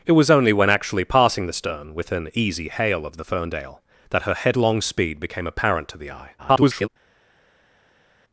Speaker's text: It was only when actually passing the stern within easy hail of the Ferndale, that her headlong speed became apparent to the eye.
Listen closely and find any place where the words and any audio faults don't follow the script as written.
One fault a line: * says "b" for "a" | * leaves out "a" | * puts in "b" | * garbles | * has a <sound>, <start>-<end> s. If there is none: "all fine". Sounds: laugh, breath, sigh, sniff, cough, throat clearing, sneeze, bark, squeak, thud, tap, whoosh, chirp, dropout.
* garbles